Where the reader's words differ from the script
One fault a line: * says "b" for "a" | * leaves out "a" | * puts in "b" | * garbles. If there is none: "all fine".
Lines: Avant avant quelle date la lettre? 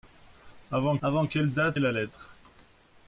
all fine